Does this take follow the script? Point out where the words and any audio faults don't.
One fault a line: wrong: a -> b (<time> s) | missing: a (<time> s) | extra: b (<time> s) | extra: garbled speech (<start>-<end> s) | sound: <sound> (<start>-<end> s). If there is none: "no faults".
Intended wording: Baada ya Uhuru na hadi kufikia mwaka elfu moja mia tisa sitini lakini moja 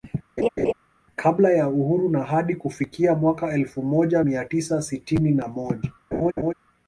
sound: laugh (0.4-0.7 s)
wrong: Baada -> Kabla (1.2 s)
wrong: lakini -> na (5.3 s)
sound: laugh (6.1-6.5 s)